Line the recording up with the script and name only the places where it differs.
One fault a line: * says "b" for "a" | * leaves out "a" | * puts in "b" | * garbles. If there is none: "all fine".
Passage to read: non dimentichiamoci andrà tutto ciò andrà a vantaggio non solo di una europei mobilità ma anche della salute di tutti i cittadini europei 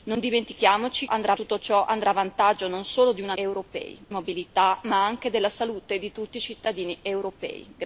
all fine